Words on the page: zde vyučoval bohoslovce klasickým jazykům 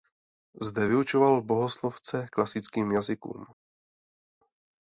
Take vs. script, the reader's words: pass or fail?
pass